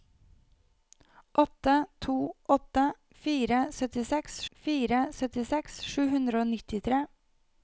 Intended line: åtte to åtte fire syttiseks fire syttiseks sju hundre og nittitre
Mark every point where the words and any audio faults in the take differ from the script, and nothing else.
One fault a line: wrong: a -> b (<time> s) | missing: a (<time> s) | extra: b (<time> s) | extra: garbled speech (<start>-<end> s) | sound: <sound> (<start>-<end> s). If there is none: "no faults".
no faults